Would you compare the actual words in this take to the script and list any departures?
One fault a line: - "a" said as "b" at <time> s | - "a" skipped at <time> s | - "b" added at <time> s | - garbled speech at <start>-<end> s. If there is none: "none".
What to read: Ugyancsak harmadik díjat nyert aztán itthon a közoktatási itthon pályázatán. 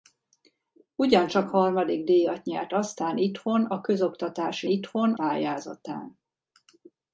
none